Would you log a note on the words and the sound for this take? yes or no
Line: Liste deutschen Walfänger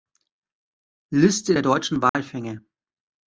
yes